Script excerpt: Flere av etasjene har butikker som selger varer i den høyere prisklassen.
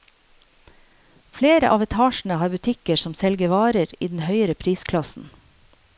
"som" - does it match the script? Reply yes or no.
yes